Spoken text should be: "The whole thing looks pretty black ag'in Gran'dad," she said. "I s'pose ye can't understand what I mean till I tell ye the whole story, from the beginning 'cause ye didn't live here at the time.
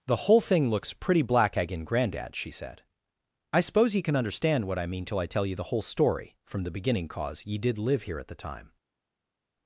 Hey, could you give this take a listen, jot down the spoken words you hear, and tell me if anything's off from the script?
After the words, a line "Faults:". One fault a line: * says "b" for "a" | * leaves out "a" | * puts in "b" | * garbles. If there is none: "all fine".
"The whole thing looks pretty black ag'in Gran'dad," she said. "I s'pose ye can understand what I mean till I tell ye the whole story, from the beginning 'cause ye did live here at the time.
Faults:
* says "can" for "can't"
* says "did" for "didn't"